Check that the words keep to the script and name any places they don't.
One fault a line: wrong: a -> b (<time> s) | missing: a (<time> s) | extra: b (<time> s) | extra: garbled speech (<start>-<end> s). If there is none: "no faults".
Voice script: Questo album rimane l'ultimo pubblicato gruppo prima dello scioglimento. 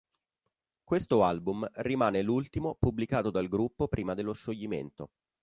extra: dal (3.3 s)